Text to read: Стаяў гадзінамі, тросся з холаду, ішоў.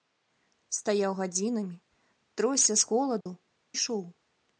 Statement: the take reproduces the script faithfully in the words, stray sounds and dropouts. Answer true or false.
false